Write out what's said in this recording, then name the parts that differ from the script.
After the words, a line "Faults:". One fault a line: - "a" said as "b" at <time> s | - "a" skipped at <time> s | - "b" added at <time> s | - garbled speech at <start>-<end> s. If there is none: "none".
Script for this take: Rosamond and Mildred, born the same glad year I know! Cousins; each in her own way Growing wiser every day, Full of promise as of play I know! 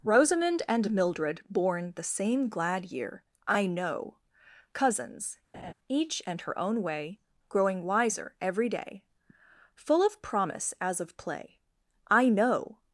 Rosamond and Mildred, born the same glad year I know! Cousins; each and her own way Growing wiser every day, Full of promise as of play I know!
Faults:
- "in" said as "and" at 6.3 s